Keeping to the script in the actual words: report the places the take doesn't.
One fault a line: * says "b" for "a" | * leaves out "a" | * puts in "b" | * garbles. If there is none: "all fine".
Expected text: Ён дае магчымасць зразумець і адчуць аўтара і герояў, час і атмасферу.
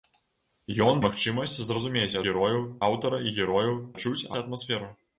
* leaves out "дае"
* says "герояў" for "адчуць"
* says "адчуць" for "час"